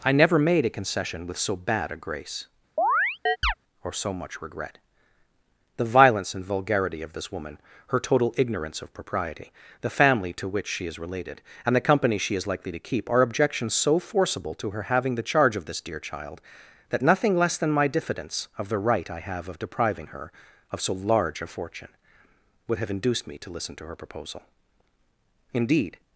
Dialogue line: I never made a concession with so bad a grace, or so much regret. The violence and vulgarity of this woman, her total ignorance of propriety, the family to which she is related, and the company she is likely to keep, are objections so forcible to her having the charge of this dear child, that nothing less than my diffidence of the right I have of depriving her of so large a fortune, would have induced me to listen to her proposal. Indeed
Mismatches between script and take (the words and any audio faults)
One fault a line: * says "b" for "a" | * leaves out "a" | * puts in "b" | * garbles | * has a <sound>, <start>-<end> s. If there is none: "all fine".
* has a chirp, 2.8-3.5 s